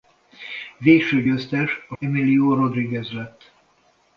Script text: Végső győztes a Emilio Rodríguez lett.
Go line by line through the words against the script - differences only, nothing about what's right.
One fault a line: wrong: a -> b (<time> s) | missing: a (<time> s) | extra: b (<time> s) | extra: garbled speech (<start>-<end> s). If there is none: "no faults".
no faults